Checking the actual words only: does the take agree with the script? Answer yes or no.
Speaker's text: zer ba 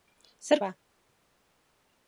yes